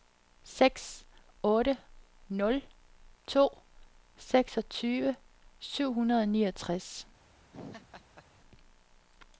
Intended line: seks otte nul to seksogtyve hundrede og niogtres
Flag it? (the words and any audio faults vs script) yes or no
yes